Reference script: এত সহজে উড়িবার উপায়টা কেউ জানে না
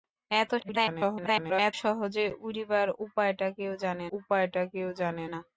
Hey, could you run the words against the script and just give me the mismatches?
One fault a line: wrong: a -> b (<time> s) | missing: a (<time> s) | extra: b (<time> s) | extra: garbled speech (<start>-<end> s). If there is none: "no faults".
extra: garbled speech (0.6-1.7 s)
extra: উপায়টা কেউ জানে (4.2 s)